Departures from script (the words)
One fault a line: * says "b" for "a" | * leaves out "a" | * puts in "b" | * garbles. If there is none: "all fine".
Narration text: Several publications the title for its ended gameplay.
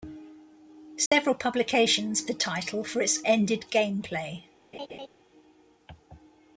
all fine